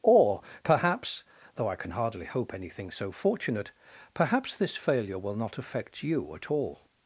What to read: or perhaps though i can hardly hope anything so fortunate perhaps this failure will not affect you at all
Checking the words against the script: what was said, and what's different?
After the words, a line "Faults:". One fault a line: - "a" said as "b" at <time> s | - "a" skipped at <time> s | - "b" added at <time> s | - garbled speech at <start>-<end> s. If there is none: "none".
or perhaps though i can hardly hope anything so fortunate perhaps this failure will not affect you at all
Faults:
none